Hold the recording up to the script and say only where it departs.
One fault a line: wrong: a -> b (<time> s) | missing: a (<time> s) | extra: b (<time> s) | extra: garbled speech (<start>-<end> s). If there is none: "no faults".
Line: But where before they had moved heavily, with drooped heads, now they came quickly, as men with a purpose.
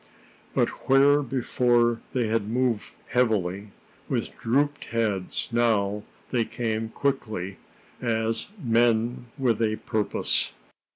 no faults